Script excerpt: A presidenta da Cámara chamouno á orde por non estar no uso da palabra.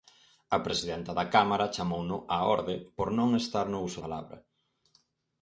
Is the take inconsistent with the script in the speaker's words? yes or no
yes